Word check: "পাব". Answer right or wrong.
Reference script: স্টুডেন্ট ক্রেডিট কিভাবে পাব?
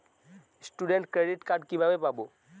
right